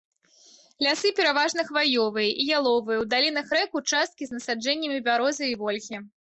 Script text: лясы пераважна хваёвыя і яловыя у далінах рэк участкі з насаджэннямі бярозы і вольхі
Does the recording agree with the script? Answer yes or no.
yes